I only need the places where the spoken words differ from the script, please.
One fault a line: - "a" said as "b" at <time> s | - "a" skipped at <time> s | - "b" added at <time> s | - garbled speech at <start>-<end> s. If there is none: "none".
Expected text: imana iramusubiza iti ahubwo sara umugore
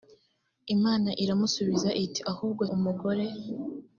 - "sara" skipped at 2.6 s